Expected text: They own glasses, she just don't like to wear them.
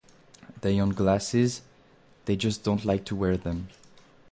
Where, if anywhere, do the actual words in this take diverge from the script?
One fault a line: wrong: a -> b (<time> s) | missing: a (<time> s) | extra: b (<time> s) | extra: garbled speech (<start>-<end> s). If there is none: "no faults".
wrong: she -> they (2.2 s)